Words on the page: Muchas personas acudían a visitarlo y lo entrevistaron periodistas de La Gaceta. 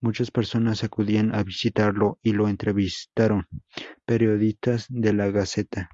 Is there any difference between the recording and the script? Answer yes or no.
no